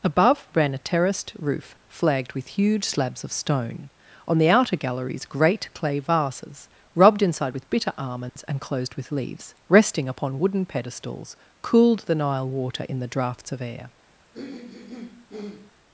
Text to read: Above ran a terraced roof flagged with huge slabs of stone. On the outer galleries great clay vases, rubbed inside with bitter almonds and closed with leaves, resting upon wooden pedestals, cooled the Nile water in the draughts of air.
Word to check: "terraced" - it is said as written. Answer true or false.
true